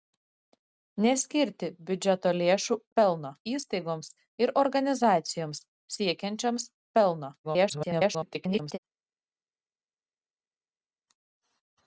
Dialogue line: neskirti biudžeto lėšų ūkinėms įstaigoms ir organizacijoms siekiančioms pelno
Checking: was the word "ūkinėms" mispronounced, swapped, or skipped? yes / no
yes